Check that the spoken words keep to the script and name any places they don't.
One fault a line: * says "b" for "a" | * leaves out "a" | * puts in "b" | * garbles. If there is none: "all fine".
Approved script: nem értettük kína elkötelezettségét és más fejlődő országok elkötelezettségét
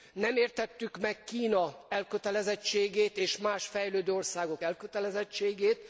* puts in "meg"